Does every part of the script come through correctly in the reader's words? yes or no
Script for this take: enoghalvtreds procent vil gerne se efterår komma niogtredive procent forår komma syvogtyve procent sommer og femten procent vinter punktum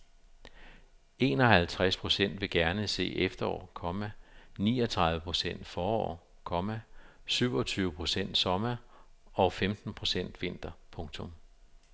yes